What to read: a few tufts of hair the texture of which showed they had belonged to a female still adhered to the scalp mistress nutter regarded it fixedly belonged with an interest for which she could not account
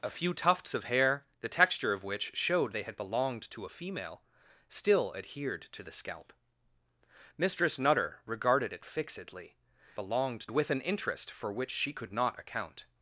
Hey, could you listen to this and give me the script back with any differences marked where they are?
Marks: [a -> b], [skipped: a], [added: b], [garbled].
a few tufts of hair the texture of which showed they had belonged to a female still adhered to the scalp mistress nutter regarded it fixedly belonged with an interest for which she could not account